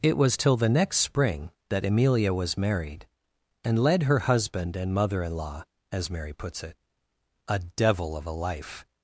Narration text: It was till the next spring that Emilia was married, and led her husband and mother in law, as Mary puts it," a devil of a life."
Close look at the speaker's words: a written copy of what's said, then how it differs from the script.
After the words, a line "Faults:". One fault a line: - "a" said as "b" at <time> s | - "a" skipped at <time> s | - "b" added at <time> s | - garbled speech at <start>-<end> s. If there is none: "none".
It was till the next spring that Emilia was married, and led her husband and mother in law, as Mary puts it," a devil of a life."
Faults:
none